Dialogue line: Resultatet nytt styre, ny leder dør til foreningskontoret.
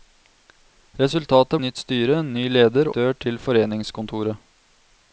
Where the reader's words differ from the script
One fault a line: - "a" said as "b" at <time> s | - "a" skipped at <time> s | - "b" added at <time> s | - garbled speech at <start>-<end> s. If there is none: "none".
none